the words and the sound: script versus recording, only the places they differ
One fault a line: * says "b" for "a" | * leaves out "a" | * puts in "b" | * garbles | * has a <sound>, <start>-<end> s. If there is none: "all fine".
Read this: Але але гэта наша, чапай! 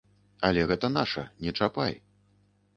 * leaves out "але"
* puts in "не"